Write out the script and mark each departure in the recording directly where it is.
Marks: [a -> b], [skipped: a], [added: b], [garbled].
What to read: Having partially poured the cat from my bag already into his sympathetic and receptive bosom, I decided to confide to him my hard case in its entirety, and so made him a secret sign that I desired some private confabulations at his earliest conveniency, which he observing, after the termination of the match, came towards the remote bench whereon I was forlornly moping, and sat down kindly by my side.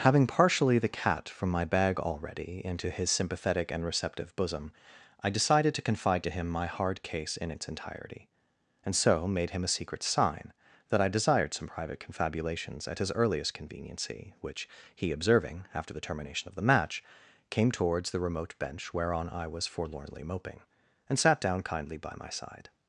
Having partially [skipped: poured] the cat from my bag already into his sympathetic and receptive bosom, I decided to confide to him my hard case in its entirety, and so made him a secret sign that I desired some private confabulations at his earliest conveniency, which he observing, after the termination of the match, came towards the remote bench whereon I was forlornly moping, and sat down kindly by my side.